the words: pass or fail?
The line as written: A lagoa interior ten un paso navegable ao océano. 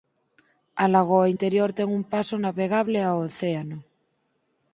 pass